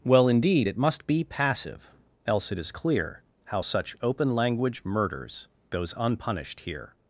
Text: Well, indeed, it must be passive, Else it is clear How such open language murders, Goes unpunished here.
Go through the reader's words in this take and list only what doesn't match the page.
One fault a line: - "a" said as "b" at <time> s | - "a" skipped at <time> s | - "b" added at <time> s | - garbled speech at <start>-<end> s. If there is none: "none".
none